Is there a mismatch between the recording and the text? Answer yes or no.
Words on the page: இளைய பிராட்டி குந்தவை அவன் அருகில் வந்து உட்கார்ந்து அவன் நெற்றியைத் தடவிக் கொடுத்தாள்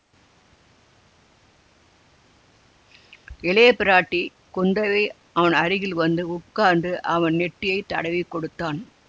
no